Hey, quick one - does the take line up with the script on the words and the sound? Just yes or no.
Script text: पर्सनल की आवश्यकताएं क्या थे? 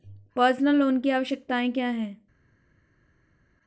no